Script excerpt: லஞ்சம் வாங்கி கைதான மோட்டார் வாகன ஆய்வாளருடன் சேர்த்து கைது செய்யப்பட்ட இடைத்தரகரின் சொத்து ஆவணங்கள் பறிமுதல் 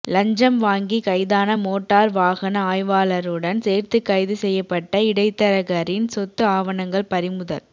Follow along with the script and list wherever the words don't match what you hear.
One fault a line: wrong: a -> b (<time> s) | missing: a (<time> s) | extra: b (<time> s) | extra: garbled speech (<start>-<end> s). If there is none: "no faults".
no faults